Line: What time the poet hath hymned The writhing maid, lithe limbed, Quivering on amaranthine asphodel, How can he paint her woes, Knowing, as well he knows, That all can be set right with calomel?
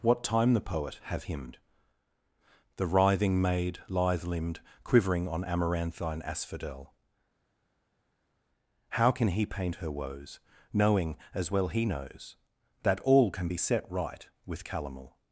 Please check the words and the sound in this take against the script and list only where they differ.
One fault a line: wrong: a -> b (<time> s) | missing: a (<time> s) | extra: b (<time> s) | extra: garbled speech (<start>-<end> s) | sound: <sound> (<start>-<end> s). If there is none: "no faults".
wrong: hath -> have (1.0 s)